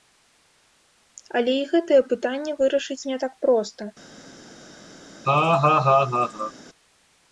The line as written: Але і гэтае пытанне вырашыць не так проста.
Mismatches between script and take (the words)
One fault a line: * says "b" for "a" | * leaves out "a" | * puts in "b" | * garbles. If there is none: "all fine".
all fine